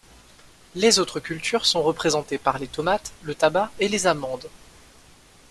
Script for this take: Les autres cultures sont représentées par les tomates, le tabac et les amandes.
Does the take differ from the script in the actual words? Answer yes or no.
no